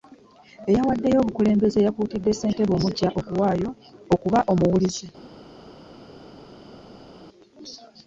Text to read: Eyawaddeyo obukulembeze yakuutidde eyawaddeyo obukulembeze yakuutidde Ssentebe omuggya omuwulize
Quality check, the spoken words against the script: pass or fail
fail